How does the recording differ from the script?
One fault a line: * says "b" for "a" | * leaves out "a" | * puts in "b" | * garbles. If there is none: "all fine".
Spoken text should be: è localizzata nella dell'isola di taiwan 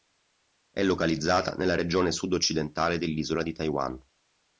* puts in "regione sud occidentale"